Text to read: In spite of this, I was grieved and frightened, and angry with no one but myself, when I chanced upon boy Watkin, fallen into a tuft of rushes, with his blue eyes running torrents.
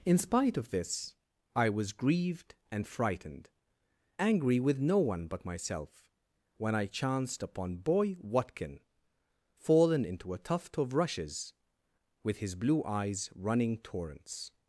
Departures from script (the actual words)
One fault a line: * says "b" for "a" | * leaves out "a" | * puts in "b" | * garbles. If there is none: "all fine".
* leaves out "and"